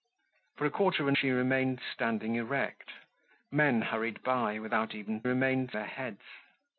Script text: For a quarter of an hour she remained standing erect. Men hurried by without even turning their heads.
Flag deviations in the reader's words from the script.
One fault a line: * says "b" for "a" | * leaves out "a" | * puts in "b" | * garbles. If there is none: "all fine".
* leaves out "hour"
* says "remained" for "turning"